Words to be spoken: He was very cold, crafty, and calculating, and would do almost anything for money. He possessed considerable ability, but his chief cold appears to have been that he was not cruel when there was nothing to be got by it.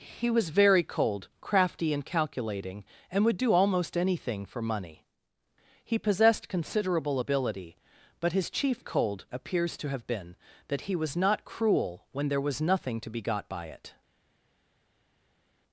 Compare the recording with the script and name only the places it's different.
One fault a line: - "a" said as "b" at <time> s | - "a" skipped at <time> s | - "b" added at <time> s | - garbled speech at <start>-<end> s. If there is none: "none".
none